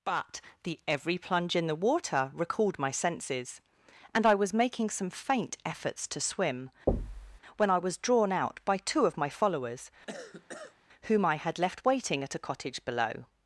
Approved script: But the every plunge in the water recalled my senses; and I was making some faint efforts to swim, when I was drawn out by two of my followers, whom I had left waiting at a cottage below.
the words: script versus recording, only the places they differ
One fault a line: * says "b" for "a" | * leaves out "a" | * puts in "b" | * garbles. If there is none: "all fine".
all fine